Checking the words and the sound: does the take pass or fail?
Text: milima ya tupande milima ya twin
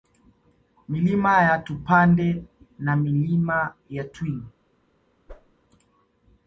fail